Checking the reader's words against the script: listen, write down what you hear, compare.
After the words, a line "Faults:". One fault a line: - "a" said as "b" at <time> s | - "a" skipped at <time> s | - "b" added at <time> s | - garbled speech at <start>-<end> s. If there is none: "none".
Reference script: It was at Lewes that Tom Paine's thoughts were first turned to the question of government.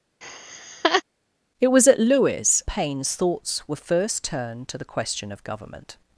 It was at Lewes Paine's thoughts were first turned to the question of government.
Faults:
- "that Tom" skipped at 2.6 s